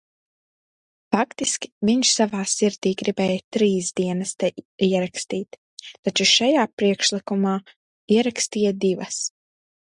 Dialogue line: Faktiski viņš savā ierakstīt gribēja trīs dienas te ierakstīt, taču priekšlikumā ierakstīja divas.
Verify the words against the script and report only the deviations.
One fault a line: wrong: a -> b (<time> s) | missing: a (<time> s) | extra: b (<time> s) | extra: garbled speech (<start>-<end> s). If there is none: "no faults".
wrong: ierakstīt -> sirdī (2.5 s)
extra: šajā (6.3 s)